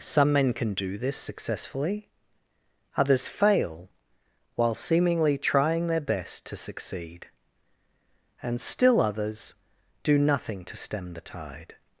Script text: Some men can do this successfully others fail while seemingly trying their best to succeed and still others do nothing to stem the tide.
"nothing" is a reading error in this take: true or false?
false